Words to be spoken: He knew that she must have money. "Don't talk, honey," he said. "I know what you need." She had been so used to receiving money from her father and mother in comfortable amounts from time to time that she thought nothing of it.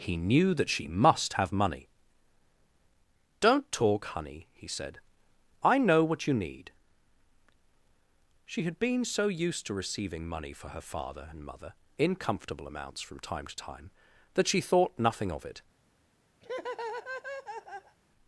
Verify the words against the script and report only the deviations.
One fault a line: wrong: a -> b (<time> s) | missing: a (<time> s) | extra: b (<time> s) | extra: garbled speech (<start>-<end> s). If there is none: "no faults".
wrong: from -> for (10.5 s)